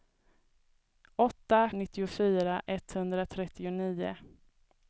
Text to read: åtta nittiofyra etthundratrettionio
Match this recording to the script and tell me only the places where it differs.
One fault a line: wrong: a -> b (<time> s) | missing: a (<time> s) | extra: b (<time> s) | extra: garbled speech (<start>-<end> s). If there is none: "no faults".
no faults